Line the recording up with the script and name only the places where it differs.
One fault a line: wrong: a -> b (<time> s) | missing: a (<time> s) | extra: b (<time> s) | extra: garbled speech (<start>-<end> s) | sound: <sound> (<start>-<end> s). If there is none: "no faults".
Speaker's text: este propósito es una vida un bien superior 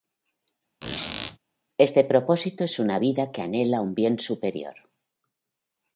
sound: squeak (0.8-1.4 s)
extra: que anhela (3.3 s)